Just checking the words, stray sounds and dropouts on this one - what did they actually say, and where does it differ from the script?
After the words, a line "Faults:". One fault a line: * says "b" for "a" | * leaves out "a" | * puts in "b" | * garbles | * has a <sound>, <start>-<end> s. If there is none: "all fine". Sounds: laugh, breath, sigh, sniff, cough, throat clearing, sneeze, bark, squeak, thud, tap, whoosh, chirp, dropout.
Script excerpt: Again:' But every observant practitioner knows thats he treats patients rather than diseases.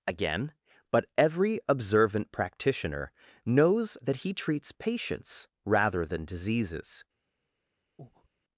Again:' But every observant practitioner knows that he treats patients rather than diseases.
Faults:
* says "that" for "thats"
* has a breath, 8.0-8.3 s